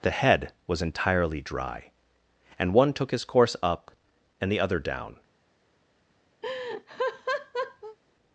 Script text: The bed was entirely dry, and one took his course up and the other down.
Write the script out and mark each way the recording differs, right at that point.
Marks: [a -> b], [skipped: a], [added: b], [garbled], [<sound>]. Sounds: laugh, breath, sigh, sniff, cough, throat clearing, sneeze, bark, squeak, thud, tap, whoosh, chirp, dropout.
The [bed -> head] was entirely dry, and one took his course up and the other down. [laugh]